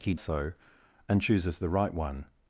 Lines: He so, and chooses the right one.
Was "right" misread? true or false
false